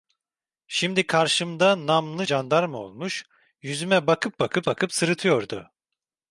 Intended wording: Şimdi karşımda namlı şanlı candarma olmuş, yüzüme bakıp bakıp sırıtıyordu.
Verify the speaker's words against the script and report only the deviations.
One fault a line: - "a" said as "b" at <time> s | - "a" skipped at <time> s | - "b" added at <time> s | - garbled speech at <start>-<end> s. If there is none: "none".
- "şanlı" skipped at 2.3 s
- "bakıp" added at 4.7 s